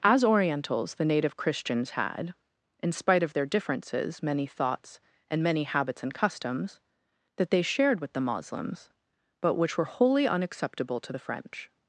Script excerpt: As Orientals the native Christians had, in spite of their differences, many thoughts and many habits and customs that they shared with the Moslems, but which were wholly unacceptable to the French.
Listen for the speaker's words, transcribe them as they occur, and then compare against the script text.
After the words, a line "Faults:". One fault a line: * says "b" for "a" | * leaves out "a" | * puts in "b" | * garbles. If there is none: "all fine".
As Orientals the native Christians had, in spite of their differences, many thoughts and many habits and customs that they shared with the Moslems, but which were wholly unacceptable to the French.
Faults:
all fine